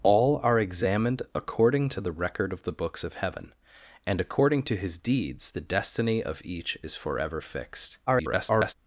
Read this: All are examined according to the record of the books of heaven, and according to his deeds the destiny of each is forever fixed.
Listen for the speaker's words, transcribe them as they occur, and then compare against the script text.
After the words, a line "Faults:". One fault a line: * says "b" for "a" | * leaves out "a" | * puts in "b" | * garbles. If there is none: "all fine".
All are examined according to the record of the books of heaven, and according to his deeds the destiny of each is forever fixed. [garbled]
Faults:
* garbles